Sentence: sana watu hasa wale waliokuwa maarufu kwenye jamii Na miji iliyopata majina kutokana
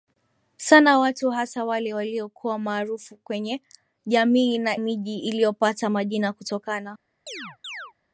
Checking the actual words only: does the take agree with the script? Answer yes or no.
yes